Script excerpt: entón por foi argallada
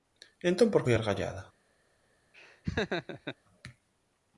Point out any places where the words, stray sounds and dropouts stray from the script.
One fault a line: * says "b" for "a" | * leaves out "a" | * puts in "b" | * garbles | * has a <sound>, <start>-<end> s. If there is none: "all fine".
* has a laugh, 2.3-3.4 s